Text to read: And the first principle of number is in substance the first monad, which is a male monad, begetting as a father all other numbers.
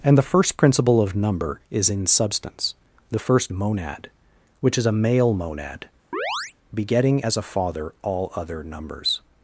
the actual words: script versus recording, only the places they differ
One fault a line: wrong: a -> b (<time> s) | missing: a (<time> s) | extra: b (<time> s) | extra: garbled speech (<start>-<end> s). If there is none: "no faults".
no faults